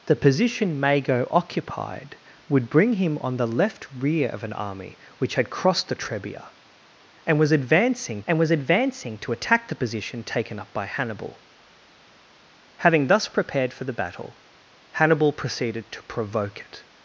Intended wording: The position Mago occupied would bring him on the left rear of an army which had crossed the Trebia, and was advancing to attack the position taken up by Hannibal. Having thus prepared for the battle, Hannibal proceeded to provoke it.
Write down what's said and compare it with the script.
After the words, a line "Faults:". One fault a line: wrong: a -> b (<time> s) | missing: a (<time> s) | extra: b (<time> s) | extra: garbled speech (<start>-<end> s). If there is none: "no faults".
The position Mago occupied would bring him on the left rear of an army which had crossed the Trebia, and was advancing and was advancing to attack the position taken up by Hannibal. Having thus prepared for the battle, Hannibal proceeded to provoke it.
Faults:
extra: and was advancing (8.3 s)